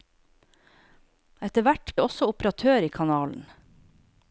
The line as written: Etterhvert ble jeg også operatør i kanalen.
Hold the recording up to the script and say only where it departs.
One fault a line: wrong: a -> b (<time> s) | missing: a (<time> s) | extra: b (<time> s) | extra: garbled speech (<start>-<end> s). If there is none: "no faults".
missing: ble (1.9 s)